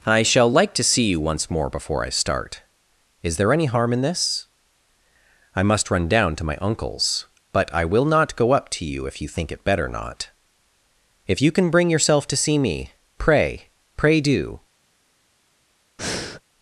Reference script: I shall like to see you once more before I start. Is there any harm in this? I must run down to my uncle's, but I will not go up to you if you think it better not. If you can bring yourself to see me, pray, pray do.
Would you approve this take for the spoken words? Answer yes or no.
yes